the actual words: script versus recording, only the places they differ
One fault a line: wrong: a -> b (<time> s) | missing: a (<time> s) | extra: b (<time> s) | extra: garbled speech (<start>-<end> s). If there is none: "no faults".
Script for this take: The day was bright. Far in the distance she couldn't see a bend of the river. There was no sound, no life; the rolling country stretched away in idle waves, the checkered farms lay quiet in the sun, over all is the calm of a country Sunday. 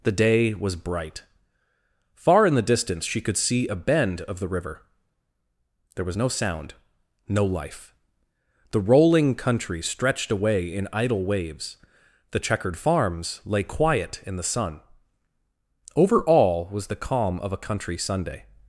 wrong: couldn't -> could (3.2 s)
wrong: is -> was (16.7 s)